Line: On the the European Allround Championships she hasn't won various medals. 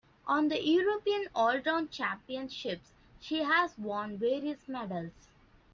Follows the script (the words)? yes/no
no